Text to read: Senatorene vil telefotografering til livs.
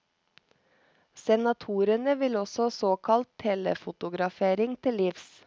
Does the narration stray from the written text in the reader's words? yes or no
yes